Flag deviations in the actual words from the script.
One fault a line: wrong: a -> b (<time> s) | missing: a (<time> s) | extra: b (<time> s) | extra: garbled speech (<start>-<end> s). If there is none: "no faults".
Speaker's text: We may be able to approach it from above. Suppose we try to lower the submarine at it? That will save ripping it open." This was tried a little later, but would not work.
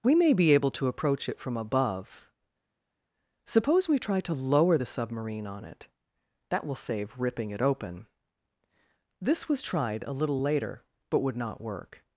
wrong: at -> on (5.5 s)